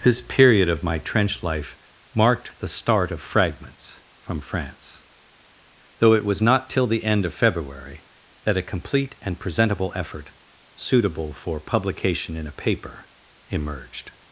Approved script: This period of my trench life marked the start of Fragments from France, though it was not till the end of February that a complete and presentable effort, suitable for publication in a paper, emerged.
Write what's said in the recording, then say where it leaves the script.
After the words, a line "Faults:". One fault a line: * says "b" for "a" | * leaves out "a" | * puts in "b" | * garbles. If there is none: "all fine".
This period of my trench life marked the start of Fragments from France, though it was not till the end of February that a complete and presentable effort, suitable for publication in a paper, emerged.
Faults:
all fine